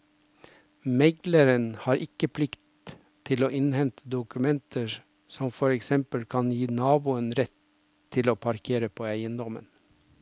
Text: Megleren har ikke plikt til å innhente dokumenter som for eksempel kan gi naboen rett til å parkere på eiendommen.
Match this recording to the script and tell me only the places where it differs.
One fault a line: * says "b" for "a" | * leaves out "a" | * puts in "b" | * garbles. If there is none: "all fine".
all fine